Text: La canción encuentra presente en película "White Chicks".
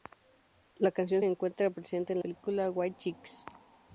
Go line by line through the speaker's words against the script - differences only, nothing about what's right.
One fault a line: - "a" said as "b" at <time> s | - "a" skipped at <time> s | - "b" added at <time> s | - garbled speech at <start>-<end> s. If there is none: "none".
none